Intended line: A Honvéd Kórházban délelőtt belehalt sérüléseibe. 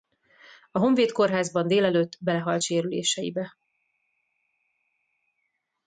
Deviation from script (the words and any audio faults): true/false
false